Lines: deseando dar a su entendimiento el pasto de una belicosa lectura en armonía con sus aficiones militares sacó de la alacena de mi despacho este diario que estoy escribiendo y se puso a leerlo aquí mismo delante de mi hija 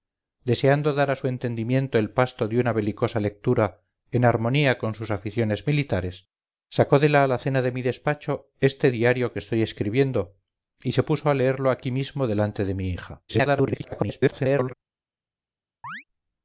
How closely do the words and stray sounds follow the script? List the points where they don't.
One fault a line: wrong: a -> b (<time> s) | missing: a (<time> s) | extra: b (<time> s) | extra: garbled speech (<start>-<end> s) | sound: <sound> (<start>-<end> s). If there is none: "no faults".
extra: garbled speech (13.3-14.7 s)
sound: chirp (15.8-16.0 s)